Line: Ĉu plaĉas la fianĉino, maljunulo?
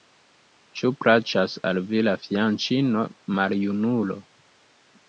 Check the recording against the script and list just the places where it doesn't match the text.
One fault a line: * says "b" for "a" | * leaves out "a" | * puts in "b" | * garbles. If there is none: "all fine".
* puts in "al vi"